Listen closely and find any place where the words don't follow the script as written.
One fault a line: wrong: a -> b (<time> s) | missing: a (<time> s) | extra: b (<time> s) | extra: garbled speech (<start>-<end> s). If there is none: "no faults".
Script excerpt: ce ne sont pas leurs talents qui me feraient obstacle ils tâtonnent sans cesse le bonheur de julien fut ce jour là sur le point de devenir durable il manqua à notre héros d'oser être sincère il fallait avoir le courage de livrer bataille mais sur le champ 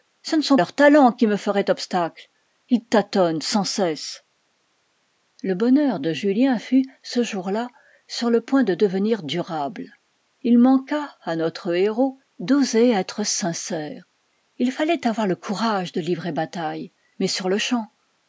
missing: pas (0.6 s)